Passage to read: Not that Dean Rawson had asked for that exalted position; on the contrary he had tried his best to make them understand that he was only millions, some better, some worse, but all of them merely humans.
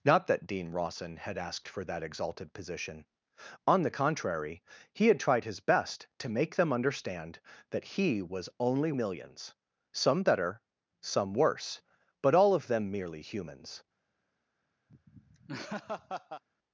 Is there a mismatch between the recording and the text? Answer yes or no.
no